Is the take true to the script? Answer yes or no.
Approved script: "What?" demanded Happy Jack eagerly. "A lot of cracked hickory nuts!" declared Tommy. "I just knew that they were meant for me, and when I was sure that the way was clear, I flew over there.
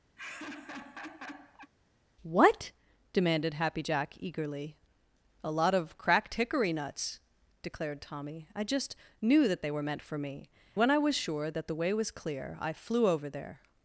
no